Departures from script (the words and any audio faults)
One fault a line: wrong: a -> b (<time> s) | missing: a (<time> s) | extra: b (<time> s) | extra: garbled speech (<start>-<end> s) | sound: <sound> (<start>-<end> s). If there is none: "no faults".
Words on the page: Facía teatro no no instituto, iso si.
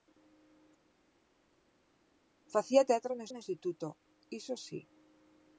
no faults